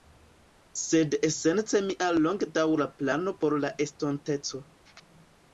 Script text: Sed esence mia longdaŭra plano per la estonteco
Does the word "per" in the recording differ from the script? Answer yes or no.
yes